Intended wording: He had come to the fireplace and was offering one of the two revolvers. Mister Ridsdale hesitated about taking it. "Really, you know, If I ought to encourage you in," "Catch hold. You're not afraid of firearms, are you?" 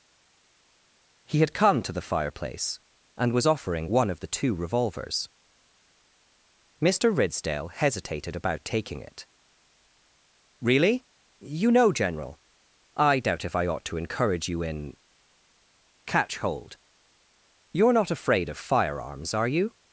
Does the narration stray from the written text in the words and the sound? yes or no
yes